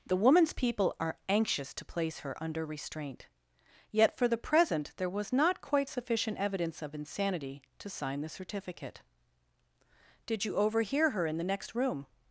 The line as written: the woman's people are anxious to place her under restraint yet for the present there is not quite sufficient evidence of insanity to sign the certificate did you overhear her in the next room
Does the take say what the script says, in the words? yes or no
no